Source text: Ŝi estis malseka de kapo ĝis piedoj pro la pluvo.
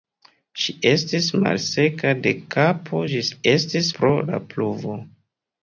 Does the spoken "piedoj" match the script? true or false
false